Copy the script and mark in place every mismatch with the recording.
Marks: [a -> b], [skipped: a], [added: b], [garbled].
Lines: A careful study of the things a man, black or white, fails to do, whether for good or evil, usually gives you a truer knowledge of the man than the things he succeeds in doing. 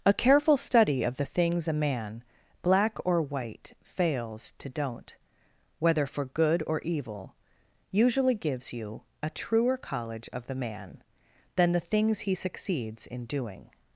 A careful study of the things a man, black or white, fails to [do, -> don't] whether for good or evil, usually gives you a truer [knowledge -> college] of the man than the things he succeeds in doing.